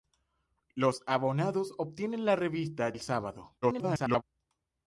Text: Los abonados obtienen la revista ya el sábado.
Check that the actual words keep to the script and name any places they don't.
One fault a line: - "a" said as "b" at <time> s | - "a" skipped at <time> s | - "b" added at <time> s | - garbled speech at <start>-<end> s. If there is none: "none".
- "ya" skipped at 3.0 s
- garbled speech at 3.6-4.2 s